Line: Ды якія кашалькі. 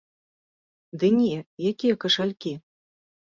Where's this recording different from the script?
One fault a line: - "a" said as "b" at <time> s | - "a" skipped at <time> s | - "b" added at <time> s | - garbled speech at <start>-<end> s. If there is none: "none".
- "не" added at 1.2 s